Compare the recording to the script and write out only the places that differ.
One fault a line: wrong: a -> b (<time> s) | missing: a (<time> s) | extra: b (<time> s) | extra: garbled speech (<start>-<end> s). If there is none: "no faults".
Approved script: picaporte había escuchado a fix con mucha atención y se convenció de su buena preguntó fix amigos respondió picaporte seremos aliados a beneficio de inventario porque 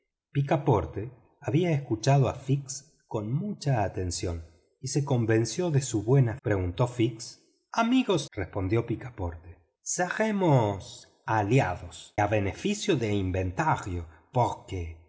no faults